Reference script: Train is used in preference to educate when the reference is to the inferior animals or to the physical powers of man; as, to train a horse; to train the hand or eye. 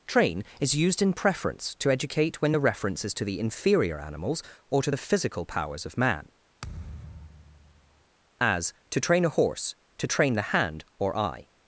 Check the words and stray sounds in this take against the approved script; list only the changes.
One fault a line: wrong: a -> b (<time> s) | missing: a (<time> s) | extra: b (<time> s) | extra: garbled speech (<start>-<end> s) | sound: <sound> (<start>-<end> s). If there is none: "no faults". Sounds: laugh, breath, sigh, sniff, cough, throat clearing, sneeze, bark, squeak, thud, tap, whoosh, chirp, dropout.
sound: thud (6.6-8.0 s)